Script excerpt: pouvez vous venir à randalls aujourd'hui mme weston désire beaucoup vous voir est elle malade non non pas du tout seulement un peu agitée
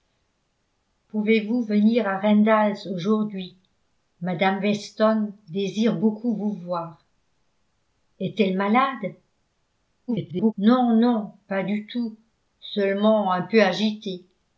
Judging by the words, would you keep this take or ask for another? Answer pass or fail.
fail